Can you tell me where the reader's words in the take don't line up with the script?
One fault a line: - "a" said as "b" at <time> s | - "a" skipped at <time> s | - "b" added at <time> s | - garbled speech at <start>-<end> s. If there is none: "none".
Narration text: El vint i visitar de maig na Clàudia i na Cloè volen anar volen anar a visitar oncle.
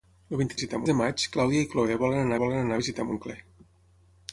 none